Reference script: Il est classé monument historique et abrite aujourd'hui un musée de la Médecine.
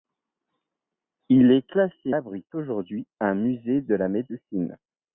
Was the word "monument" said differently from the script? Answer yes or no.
yes